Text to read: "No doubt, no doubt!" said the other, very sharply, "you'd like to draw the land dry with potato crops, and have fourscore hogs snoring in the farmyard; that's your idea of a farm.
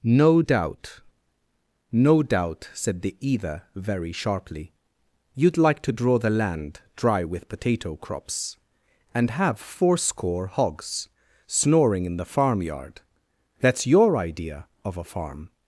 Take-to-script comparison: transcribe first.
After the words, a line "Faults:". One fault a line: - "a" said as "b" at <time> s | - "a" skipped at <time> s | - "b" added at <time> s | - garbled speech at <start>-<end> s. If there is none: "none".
"No doubt, no doubt!" said the either, very sharply, "you'd like to draw the land dry with potato crops, and have fourscore hogs snoring in the farmyard; that's your idea of a farm.
Faults:
- "other" said as "either" at 3.2 s